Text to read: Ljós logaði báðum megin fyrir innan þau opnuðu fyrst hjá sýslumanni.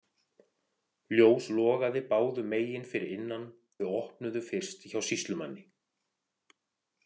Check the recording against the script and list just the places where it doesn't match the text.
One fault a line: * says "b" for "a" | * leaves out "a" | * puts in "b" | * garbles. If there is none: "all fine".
all fine